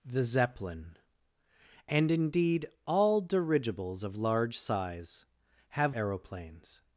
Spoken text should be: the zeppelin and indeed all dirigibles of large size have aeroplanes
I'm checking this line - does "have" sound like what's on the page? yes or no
yes